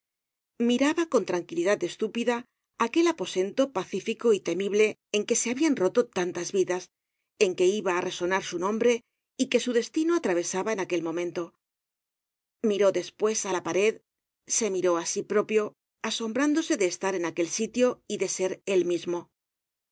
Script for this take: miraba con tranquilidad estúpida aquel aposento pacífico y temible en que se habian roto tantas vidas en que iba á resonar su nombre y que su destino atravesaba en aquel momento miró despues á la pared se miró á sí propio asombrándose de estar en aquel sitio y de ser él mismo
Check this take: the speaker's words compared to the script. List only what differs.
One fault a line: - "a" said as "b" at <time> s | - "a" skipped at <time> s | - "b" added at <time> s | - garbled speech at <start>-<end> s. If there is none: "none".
none